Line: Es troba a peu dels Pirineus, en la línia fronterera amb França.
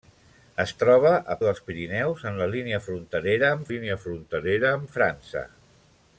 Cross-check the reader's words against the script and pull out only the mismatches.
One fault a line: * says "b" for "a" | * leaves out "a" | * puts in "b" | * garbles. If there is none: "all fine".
* leaves out "peu"
* puts in "línia fronterera amb"